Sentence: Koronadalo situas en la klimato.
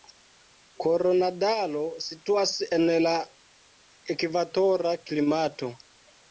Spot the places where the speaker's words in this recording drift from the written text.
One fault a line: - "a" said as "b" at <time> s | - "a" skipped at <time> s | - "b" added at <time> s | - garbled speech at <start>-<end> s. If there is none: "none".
- "ekvatora" added at 4.2 s